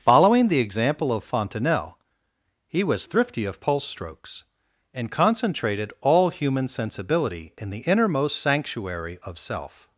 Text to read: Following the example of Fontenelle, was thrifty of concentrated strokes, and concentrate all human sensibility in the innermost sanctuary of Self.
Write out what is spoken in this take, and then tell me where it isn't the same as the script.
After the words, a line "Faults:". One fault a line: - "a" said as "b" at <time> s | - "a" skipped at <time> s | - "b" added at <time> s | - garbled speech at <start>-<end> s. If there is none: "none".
Following the example of Fontenelle, he was thrifty of pulse strokes, and concentrated all human sensibility in the innermost sanctuary of Self.
Faults:
- "he" added at 2.7 s
- "concentrated" said as "pulse" at 3.6 s
- "concentrate" said as "concentrated" at 5.1 s